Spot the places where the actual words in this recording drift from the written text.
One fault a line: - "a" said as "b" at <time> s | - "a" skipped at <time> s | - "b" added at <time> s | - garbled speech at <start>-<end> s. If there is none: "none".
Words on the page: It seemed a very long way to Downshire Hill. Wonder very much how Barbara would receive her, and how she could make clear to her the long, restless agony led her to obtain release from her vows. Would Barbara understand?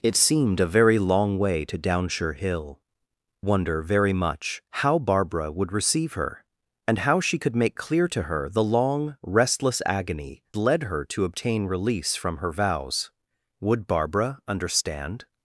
none